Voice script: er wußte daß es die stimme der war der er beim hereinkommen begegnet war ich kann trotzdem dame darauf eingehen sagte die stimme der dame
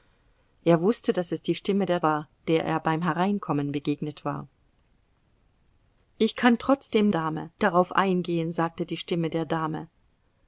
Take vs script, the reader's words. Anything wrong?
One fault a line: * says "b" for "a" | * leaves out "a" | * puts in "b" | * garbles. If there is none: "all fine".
all fine